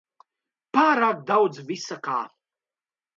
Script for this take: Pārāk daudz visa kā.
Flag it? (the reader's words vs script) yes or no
no